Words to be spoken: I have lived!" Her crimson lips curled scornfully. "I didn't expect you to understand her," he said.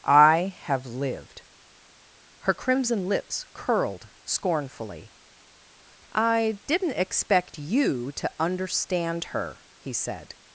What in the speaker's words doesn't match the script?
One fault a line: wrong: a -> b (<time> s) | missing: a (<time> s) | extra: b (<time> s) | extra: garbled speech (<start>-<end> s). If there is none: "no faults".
no faults